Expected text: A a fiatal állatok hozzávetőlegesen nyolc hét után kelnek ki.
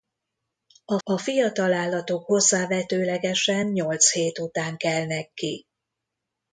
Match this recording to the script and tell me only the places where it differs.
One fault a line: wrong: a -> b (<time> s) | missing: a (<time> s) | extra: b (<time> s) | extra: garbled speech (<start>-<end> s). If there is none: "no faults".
no faults